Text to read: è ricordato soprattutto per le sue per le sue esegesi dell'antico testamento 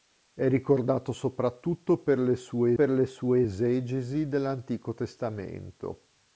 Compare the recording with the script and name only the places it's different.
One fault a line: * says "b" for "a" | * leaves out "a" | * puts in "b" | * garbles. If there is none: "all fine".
all fine